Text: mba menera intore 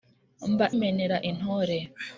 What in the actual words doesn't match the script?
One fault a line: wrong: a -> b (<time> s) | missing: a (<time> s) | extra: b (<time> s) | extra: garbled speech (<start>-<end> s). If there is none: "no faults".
no faults